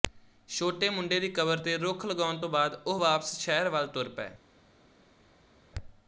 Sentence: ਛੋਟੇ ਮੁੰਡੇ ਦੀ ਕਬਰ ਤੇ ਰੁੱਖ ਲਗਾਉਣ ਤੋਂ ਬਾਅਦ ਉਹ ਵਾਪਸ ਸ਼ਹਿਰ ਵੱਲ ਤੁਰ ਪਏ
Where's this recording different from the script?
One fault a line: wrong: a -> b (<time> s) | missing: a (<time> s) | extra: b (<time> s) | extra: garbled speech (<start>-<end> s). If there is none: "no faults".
no faults